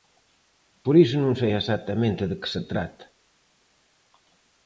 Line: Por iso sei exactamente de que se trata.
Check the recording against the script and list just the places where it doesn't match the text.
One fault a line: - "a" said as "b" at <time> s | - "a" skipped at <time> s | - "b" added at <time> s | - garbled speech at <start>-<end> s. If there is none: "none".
- "non" added at 1.2 s